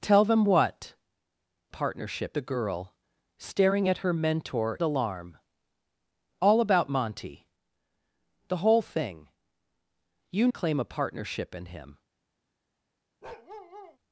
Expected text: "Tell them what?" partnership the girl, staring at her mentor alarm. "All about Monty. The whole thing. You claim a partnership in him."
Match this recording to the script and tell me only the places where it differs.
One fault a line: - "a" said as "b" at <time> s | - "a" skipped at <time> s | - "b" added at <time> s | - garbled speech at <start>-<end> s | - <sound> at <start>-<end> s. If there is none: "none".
- bark at 13.2-14.0 s